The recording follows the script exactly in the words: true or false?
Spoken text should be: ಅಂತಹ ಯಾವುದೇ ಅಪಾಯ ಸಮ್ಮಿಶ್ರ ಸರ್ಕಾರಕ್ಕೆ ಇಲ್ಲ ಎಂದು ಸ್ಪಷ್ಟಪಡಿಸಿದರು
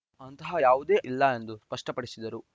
false